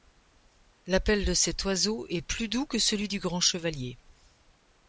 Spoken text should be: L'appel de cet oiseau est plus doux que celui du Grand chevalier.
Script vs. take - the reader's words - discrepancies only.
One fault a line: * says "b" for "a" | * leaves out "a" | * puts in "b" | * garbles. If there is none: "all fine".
all fine